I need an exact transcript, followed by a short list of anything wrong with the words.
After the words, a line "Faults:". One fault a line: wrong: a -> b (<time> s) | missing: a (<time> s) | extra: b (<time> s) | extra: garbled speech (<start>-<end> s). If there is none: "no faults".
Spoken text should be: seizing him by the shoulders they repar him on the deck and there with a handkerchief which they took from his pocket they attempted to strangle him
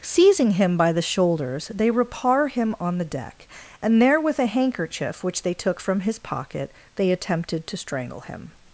seizing him by the shoulders they repar him on the deck and there with a handkerchief which they took from his pocket they attempted to strangle him
Faults:
no faults